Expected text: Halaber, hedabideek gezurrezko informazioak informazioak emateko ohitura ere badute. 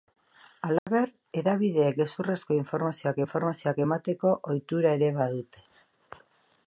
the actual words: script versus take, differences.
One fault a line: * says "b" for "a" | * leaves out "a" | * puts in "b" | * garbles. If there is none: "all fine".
all fine